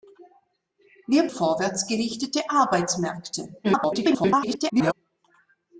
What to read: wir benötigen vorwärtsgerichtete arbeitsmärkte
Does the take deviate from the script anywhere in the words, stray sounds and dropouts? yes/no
yes